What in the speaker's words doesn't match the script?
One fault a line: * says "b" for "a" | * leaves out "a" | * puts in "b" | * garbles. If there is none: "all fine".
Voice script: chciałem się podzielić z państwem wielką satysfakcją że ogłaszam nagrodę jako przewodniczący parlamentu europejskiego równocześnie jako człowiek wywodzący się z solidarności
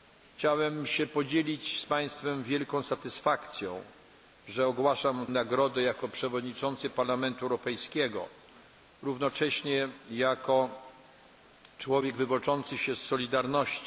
all fine